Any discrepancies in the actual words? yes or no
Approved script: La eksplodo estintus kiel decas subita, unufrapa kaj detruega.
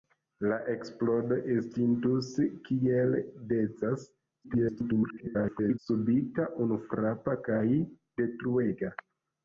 yes